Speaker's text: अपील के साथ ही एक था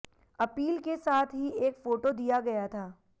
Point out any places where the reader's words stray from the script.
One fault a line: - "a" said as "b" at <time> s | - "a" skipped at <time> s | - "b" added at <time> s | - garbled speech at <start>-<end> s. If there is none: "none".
- "फोटो दिया गया" added at 1.8 s